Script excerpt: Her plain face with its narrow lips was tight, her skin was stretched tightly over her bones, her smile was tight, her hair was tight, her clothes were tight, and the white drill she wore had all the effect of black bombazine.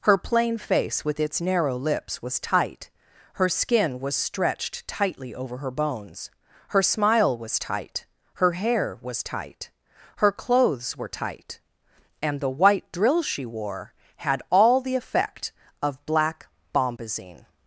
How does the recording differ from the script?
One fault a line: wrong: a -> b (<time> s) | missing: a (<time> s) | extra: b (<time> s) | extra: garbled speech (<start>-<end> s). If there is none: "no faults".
no faults